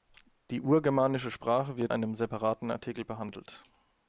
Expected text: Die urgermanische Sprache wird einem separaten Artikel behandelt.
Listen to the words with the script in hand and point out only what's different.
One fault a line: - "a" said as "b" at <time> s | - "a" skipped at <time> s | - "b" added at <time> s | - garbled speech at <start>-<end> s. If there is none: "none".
none